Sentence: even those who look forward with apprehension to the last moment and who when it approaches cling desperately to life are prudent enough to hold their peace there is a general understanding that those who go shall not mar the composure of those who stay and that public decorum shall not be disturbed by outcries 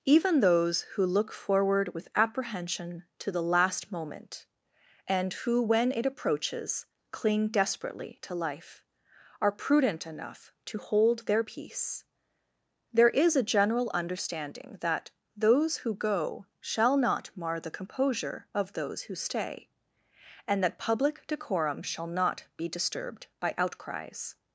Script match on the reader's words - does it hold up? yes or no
yes